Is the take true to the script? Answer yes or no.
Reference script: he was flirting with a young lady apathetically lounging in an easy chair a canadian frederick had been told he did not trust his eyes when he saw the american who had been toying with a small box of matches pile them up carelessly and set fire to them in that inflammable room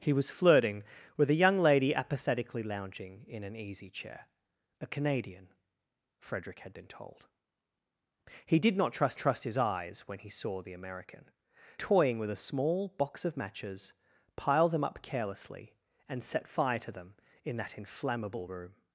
no